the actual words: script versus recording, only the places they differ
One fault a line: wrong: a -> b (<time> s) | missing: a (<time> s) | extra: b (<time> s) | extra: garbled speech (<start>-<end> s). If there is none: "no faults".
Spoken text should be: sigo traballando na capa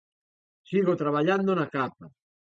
no faults